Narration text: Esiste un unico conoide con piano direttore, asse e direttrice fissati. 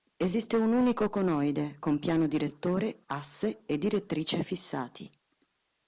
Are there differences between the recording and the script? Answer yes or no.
no